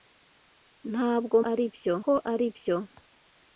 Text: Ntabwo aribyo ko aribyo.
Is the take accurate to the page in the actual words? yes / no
yes